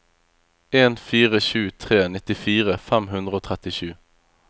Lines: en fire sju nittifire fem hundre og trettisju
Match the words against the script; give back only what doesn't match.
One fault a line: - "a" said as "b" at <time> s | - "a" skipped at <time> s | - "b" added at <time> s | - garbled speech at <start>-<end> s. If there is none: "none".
- "tre" added at 1.8 s